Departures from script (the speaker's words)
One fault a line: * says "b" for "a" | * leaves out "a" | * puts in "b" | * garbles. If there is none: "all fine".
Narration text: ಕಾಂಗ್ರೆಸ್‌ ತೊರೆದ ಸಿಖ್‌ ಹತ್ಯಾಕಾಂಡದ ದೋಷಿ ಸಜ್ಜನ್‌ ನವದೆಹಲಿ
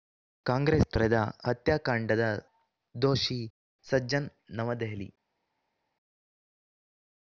* leaves out "ಸಿಖ್"